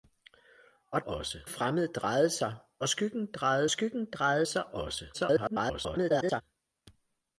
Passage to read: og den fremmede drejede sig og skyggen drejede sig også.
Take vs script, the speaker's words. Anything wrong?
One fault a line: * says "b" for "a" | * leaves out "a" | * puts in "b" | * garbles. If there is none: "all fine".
* says "også" for "den"
* puts in "skyggen drejede"
* garbles